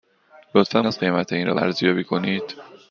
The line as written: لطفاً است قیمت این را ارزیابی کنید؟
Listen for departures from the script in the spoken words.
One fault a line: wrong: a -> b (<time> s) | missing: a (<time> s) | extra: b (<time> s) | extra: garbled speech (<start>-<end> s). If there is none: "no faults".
no faults